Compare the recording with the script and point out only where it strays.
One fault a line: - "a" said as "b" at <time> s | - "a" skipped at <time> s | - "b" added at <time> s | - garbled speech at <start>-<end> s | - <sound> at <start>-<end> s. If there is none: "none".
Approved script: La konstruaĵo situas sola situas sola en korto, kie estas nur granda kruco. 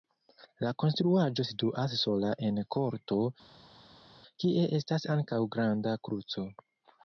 - "situas sola" skipped at 2.3 s
- "nur" said as "ankaŭ" at 5.2 s